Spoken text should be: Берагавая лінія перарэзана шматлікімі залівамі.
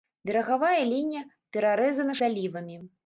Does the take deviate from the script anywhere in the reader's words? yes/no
yes